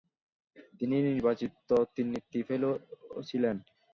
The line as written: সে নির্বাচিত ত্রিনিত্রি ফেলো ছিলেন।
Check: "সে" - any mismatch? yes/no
yes